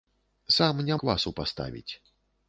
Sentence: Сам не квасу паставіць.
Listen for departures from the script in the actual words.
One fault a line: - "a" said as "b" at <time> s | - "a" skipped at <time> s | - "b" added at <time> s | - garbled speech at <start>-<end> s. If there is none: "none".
none